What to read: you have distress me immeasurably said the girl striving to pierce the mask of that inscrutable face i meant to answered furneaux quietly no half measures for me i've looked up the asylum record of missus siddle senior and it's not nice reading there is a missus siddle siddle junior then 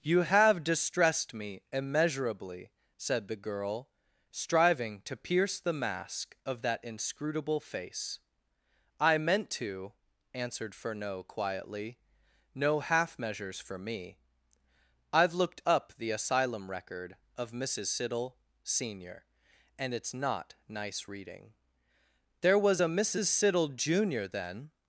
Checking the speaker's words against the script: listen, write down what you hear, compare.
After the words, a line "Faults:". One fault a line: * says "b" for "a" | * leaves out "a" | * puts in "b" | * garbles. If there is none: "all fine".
you have distressed me immeasurably said the girl striving to pierce the mask of that inscrutable face i meant to answered furneaux quietly no half measures for me i've looked up the asylum record of missus siddle senior and it's not nice reading there was a missus siddle junior then
Faults:
* says "distressed" for "distress"
* says "was" for "is"
* leaves out "siddle"